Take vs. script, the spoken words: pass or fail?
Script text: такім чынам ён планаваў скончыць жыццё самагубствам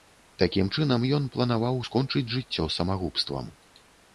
pass